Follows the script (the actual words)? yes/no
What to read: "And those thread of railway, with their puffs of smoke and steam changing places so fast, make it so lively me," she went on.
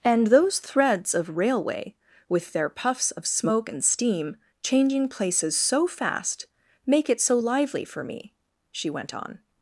no